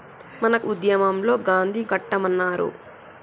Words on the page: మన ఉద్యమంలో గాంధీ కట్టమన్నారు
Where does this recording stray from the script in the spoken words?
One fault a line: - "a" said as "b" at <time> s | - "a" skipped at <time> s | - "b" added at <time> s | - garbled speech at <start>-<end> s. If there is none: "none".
none